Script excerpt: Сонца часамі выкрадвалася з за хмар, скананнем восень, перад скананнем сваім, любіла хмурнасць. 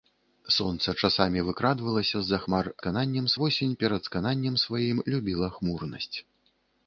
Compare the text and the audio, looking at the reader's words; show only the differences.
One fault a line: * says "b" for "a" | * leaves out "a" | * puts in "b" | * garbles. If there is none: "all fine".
all fine